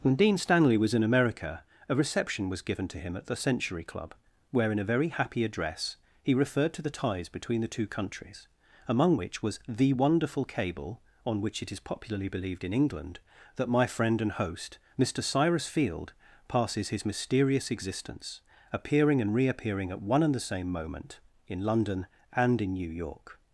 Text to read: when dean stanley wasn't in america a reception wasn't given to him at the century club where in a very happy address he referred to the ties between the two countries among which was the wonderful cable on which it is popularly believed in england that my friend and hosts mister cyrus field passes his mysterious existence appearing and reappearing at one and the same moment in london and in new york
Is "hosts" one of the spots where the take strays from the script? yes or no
yes